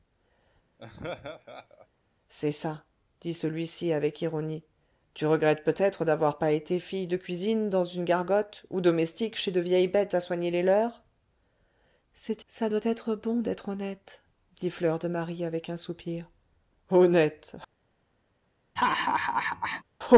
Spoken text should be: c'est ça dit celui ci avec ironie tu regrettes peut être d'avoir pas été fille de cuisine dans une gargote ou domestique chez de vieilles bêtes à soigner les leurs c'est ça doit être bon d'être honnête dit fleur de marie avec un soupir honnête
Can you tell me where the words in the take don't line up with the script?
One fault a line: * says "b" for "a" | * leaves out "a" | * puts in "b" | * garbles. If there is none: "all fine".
all fine